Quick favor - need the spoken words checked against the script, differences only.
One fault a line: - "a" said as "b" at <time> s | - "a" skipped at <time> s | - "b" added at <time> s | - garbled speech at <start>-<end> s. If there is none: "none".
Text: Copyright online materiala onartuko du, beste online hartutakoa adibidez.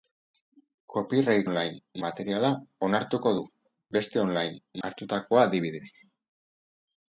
none